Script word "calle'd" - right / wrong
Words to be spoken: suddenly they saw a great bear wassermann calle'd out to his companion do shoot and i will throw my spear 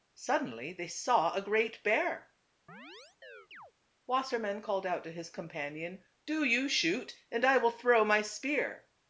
right